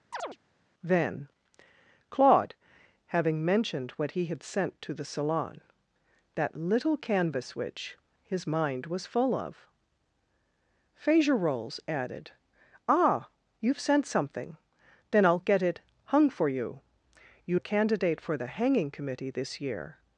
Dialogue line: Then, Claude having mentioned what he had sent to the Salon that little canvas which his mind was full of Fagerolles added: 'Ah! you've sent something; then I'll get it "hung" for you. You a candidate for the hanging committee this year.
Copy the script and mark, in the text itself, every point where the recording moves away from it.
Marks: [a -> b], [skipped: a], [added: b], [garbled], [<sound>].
[chirp] Then, Claude having mentioned what he had sent to the Salon that little canvas which his mind was full of Fagerolles added: 'Ah! you've sent something; then I'll get it "hung" for you. You a candidate for the hanging committee this year.